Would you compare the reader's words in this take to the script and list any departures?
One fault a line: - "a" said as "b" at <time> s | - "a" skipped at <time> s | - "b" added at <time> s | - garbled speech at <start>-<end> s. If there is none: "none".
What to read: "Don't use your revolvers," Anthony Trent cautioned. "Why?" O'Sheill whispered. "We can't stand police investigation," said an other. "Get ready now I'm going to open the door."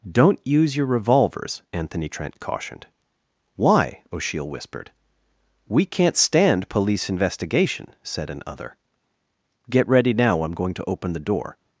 none